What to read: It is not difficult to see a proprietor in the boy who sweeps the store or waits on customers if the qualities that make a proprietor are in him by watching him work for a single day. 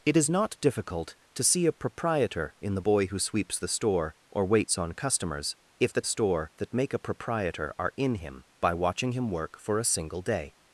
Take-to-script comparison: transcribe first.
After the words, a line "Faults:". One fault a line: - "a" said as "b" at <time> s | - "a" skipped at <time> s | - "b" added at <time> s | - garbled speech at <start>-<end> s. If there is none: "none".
It is not difficult to see a proprietor in the boy who sweeps the store or waits on customers if the store that make a proprietor are in him by watching him work for a single day.
Faults:
- "qualities" said as "store" at 6.0 s